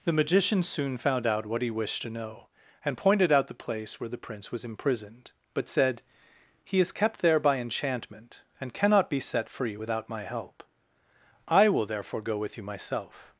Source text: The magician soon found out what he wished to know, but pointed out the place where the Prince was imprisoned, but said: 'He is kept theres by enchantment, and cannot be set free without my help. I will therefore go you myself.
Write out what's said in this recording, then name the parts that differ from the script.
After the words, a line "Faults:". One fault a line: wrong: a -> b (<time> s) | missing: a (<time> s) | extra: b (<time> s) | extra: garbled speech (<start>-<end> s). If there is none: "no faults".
The magician soon found out what he wished to know, and pointed out the place where the Prince was imprisoned, but said: 'He is kept there by enchantment, and cannot be set free without my help. I will therefore go with you myself.
Faults:
wrong: but -> and (2.9 s)
wrong: theres -> there (7.2 s)
extra: with (12.4 s)